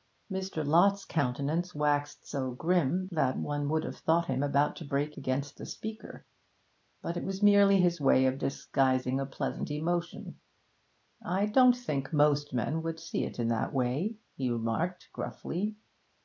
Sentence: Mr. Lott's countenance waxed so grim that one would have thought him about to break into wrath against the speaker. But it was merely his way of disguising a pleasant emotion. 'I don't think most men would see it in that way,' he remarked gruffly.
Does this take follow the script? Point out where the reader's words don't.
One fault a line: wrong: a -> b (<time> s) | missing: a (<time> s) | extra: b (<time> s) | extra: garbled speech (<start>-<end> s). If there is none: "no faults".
missing: into wrath (5.2 s)